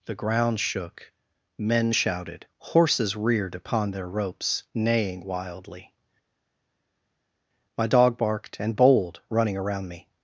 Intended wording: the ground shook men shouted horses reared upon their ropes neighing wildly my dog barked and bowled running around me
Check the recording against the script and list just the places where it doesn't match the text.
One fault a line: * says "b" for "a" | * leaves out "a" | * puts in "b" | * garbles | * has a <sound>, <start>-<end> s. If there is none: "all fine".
all fine